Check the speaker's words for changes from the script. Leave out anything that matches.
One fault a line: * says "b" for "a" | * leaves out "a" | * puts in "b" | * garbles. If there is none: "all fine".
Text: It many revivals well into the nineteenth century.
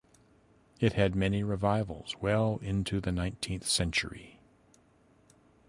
* puts in "had"